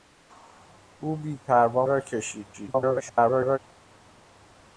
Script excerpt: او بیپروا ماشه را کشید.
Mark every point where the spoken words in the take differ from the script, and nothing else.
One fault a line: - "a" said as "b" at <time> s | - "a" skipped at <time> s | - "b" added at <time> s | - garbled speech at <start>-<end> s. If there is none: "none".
- "ماشه" skipped at 1.9 s
- garbled speech at 2.5-3.6 s